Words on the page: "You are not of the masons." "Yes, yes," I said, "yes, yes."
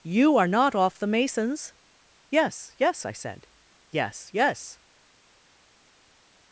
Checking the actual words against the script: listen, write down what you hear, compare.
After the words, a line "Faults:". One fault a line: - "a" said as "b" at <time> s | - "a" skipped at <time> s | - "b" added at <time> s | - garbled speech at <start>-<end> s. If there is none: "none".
"You are not off the masons." "Yes, yes," I said, "yes, yes."
Faults:
- "of" said as "off" at 0.8 s